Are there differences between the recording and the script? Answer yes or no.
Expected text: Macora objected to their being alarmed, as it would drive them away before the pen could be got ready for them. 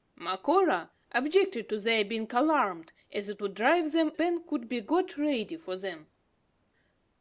yes